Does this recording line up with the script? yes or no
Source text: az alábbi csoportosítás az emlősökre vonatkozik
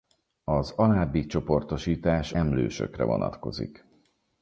no